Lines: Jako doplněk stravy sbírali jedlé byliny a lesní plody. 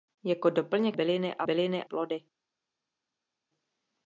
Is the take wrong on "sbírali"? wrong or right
wrong